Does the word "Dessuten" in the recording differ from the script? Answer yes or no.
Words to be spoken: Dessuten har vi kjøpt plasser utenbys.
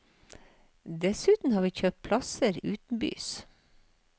no